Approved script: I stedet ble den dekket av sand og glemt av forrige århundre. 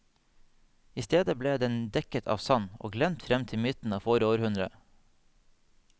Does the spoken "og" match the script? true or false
true